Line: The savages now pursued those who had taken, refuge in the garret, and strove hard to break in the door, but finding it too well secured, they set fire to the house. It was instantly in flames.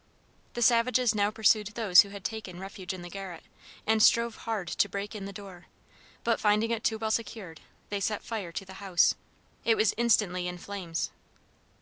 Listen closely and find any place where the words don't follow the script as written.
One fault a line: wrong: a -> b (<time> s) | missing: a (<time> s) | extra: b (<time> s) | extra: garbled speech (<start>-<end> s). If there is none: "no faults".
no faults